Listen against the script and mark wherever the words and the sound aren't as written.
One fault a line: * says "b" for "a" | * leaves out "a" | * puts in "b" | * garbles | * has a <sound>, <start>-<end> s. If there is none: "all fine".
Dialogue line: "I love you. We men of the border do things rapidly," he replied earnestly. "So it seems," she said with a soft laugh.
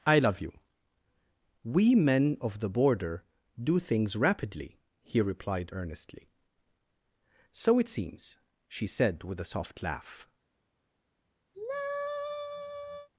* has a sigh, 11.5-13.1 s